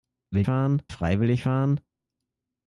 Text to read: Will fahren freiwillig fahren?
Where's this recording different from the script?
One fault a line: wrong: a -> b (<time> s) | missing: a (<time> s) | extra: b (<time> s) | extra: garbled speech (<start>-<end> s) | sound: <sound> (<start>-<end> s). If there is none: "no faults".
no faults